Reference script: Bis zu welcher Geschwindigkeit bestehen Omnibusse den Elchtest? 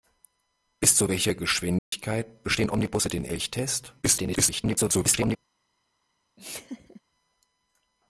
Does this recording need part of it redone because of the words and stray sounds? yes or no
yes